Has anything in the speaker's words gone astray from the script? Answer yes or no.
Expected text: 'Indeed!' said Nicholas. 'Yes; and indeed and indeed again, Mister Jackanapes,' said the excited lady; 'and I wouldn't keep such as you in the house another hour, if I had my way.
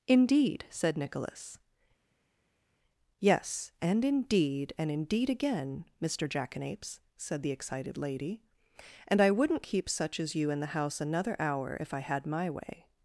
no